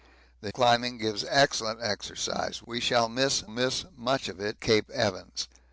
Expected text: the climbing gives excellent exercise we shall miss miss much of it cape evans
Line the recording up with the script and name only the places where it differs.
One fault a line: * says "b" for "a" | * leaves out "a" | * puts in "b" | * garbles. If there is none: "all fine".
all fine